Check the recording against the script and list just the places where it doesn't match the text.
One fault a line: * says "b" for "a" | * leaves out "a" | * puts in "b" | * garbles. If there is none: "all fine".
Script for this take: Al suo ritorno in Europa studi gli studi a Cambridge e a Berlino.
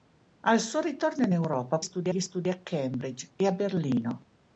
all fine